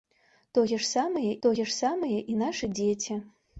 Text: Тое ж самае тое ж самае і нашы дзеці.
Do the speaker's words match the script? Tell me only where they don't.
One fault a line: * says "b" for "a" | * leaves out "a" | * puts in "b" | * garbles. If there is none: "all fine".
all fine